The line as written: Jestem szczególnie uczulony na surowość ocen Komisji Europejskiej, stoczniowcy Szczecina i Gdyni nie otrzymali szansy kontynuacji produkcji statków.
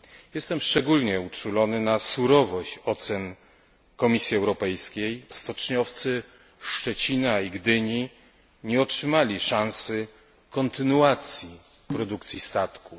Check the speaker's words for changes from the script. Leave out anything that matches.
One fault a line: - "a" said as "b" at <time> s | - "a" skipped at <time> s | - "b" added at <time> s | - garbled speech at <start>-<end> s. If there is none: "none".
none